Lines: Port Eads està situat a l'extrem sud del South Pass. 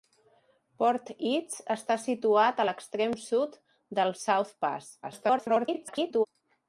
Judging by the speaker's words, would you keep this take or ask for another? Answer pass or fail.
fail